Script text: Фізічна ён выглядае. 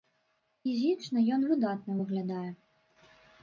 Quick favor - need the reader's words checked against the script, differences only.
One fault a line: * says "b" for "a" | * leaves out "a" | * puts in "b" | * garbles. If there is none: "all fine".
* puts in "выдатна"